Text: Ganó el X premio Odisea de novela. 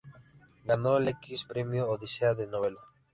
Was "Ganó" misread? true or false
false